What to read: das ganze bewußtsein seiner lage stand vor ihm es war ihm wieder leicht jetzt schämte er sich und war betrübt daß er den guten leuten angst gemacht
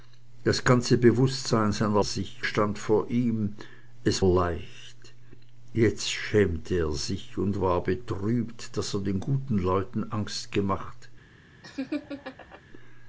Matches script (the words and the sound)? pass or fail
fail